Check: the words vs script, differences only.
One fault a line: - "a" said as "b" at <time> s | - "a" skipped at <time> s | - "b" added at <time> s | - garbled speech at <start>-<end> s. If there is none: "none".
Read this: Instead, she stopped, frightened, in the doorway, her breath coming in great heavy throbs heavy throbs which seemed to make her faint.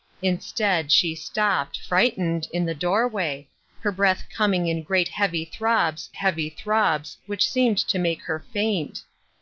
none